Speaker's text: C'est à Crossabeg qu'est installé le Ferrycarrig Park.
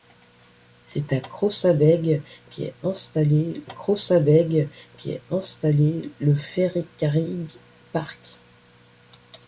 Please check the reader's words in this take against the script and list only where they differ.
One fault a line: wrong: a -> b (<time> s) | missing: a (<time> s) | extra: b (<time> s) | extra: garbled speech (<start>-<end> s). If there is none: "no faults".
extra: Crossabeg qu'est installé (3.6 s)